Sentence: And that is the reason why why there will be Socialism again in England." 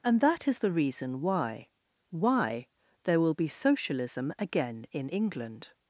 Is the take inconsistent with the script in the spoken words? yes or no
no